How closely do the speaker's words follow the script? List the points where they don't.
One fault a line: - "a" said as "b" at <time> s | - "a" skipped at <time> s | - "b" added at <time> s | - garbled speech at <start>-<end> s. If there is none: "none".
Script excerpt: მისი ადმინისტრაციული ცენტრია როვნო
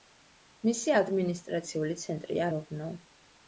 none